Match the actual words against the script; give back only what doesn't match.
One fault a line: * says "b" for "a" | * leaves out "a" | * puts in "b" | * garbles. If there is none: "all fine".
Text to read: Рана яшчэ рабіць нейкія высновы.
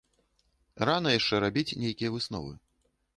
all fine